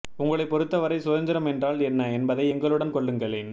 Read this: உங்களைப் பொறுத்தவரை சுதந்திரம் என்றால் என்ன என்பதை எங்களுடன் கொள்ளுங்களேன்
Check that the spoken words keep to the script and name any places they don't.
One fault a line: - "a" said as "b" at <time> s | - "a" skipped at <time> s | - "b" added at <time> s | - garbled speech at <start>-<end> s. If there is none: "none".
none